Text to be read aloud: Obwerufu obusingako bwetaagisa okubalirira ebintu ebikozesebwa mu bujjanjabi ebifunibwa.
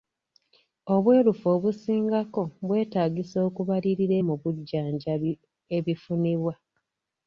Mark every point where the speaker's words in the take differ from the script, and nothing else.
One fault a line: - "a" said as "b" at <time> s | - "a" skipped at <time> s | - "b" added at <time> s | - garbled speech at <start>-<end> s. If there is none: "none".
- "ebintu ebikozesebwa" skipped at 4.2 s